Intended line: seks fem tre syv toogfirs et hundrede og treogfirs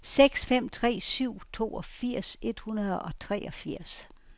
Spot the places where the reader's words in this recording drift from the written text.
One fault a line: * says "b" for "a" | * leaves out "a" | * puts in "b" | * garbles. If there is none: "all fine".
all fine